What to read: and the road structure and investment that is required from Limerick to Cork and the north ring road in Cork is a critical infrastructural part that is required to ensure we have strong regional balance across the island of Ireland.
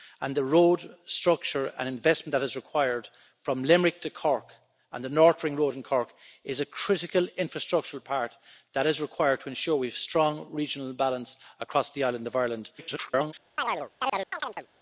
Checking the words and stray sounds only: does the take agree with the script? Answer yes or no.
no